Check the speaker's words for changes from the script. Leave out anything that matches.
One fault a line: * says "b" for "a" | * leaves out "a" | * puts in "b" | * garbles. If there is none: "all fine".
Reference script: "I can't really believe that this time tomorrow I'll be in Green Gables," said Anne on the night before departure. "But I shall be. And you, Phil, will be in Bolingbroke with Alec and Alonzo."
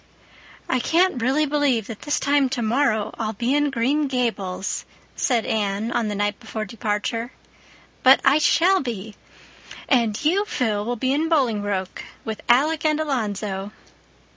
all fine